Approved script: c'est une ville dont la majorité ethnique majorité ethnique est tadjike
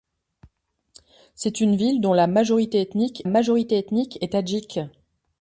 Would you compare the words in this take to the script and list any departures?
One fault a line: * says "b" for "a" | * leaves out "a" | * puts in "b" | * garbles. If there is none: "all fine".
all fine